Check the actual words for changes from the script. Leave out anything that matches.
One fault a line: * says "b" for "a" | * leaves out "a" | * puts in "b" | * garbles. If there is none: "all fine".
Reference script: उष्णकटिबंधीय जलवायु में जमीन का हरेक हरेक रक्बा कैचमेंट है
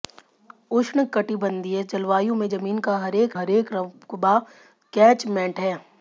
all fine